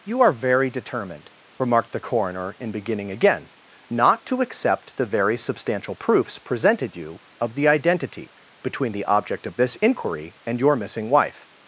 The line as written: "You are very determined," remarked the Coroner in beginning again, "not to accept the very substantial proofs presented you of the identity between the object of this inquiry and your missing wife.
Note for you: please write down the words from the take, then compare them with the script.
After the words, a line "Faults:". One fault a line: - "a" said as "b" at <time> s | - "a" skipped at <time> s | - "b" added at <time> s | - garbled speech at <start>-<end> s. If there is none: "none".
"You are very determined," remarked the Coroner in beginning again, "not to accept the very substantial proofs presented you of the identity between the object of this inquiry and your missing wife.
Faults:
none